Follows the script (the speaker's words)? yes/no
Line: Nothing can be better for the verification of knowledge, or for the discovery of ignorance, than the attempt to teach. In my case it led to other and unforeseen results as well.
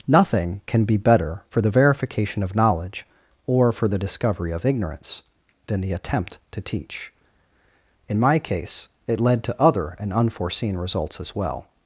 yes